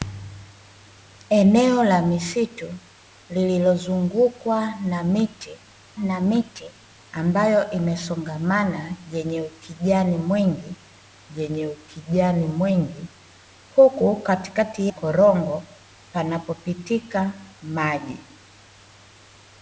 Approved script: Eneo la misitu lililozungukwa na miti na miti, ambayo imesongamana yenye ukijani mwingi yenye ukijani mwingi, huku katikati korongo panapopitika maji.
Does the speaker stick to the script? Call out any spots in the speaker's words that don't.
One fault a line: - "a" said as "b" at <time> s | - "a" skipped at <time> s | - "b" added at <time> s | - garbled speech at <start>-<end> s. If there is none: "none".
none